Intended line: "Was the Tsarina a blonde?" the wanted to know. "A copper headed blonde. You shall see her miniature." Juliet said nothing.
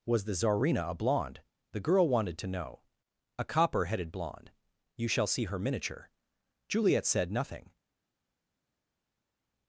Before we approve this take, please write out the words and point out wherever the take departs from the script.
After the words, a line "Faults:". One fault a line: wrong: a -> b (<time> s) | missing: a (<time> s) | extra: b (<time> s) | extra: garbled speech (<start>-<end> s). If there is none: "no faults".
"Was the Tsarina a blonde?" the girl wanted to know. "A copper headed blonde. You shall see her miniature." Juliet said nothing.
Faults:
extra: girl (1.8 s)